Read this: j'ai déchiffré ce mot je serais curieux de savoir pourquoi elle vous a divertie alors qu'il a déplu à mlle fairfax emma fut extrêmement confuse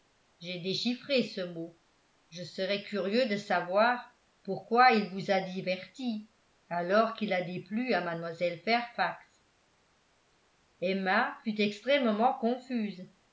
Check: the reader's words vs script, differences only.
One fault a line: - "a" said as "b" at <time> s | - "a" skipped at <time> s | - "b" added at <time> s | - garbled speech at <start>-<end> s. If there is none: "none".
- "elle" said as "il" at 4.9 s